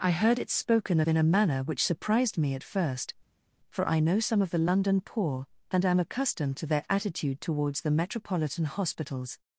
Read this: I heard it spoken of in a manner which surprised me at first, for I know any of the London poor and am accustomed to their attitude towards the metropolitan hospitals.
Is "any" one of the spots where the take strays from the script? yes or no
yes